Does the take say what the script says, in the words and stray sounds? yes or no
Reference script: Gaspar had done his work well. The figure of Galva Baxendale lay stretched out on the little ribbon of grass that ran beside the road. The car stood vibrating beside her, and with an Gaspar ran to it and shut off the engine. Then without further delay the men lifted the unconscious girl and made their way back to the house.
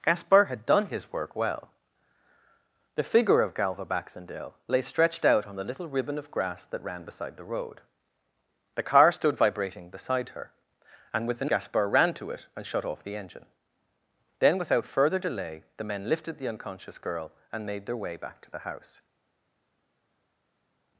yes